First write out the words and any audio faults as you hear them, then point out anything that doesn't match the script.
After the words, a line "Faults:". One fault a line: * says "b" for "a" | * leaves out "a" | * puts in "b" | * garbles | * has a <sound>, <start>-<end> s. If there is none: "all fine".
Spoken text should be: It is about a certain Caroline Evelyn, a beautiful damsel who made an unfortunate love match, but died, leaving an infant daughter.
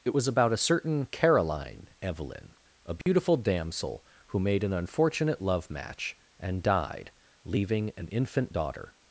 It was about a certain Caroline Evelyn, a beautiful damsel who made an unfortunate love match, and died, leaving an infant daughter.
Faults:
* says "was" for "is"
* has a dropout, 3.0-3.1 s
* says "and" for "but"